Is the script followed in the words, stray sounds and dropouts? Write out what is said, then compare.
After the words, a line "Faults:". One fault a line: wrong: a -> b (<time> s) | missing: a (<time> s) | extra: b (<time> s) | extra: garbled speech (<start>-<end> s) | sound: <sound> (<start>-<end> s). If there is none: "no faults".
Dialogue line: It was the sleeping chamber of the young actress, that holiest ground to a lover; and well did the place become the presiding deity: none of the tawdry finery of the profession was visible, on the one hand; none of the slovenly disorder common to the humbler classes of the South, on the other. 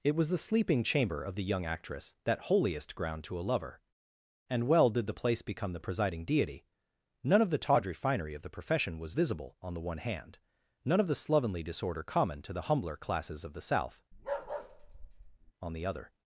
It was the sleeping chamber of the young actress, that holiest ground to a lover; and well did the place become the presiding deity: none of the tawdry finery of the profession was visible, on the one hand; none of the slovenly disorder common to the humbler classes of the South, on the other.
Faults:
sound: bark (14.1-15.5 s)